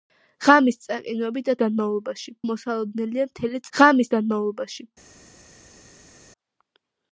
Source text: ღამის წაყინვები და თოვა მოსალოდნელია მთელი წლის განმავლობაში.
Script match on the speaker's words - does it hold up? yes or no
no